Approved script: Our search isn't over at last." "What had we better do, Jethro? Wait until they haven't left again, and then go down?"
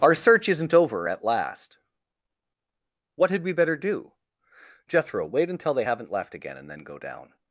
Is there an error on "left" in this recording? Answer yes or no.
no